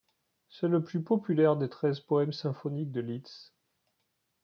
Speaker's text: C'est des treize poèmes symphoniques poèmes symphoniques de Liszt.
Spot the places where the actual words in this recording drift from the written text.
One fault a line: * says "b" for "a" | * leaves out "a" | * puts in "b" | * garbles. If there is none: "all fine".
* puts in "le plus populaire"
* leaves out "poèmes symphoniques"